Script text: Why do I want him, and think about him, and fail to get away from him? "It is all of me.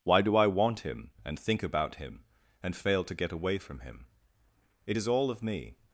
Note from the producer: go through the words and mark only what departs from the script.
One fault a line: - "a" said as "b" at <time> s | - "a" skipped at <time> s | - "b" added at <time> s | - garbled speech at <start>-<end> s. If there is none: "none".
none